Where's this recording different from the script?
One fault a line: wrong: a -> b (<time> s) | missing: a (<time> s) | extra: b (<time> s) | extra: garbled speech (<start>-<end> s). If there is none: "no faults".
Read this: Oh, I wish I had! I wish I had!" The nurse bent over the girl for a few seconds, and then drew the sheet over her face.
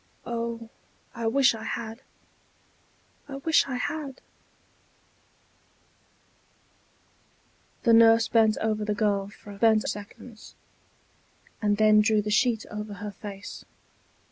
wrong: few -> bent (9.5 s)